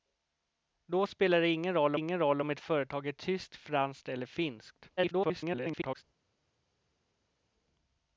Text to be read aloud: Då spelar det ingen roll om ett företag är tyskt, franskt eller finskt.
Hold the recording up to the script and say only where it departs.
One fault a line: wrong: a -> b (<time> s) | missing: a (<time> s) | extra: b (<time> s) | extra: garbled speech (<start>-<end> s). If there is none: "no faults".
extra: ingen roll (1.9 s)
extra: garbled speech (5.0-6.0 s)